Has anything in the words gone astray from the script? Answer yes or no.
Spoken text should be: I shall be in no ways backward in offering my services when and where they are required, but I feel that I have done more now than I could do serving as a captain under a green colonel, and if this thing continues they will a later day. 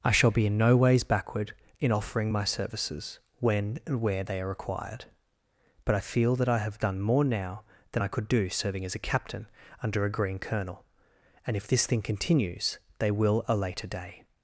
no